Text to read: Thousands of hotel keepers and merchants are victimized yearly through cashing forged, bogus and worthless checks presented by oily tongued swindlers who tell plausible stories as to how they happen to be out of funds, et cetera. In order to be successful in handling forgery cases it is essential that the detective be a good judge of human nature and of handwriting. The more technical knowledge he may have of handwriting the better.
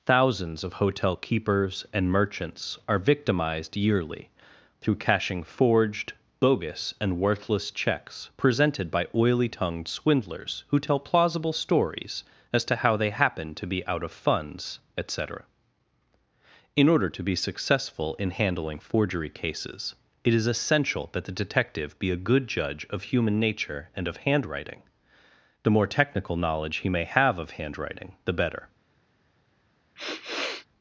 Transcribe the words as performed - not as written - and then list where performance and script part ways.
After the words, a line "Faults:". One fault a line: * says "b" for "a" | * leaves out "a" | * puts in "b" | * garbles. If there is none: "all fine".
Thousands of hotel keepers and merchants are victimized yearly through cashing forged, bogus and worthless checks presented by oily tongued swindlers who tell plausible stories as to how they happen to be out of funds, et cetera. In order to be successful in handling forgery cases it is essential that the detective be a good judge of human nature and of handwriting. The more technical knowledge he may have of handwriting the better.
Faults:
all fine